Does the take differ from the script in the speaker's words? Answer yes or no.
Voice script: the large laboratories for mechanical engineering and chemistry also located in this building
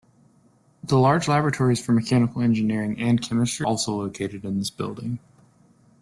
no